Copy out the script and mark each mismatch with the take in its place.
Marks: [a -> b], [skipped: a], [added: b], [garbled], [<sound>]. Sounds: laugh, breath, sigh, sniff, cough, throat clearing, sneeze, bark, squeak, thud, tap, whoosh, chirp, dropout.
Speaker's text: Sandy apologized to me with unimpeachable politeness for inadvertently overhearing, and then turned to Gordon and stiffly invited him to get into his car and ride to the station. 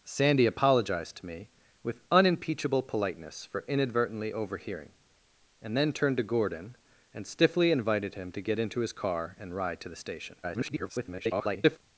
Sandy apologized to me with unimpeachable politeness for inadvertently overhearing, and then turned to Gordon and stiffly invited him to get into his car and ride to the station. [garbled]